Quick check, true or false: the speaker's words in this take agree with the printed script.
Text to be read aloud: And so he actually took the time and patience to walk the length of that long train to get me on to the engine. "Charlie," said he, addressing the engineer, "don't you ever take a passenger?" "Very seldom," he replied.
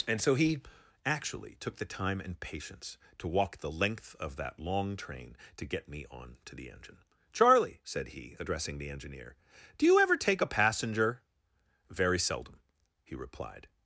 false